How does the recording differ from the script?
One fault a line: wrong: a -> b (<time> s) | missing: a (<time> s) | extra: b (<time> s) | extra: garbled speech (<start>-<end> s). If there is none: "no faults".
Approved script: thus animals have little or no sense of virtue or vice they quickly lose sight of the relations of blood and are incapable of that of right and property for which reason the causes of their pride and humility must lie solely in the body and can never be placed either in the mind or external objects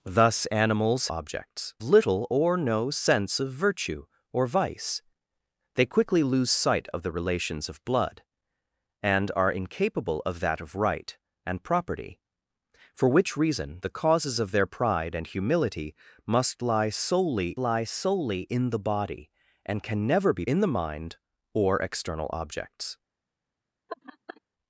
wrong: have -> objects (1.1 s)
extra: lie solely (17.6 s)
missing: placed either (20.4 s)